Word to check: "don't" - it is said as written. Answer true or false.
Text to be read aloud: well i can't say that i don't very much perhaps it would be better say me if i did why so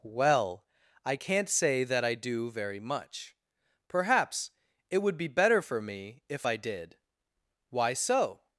false